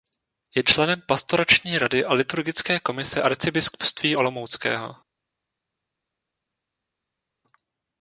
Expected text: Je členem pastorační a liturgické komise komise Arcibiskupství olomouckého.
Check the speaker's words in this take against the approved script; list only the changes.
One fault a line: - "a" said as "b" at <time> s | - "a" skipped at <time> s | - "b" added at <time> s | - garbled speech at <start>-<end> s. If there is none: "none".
- "rady" added at 1.8 s
- "komise" skipped at 3.2 s